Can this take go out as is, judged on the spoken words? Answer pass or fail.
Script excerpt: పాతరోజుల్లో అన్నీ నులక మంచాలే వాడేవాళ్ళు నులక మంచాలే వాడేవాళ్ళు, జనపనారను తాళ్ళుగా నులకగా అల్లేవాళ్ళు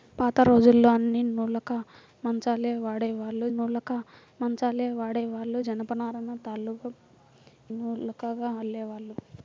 pass